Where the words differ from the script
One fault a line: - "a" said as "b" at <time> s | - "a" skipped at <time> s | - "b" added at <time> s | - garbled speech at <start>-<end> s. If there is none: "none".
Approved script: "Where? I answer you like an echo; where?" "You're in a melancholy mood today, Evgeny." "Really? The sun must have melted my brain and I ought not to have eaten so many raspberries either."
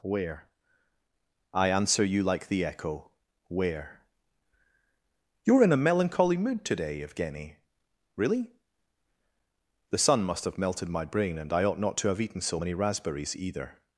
- "an" said as "the" at 2.5 s